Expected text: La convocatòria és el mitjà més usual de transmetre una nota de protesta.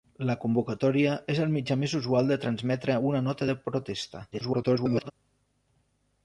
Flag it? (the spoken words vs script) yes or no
yes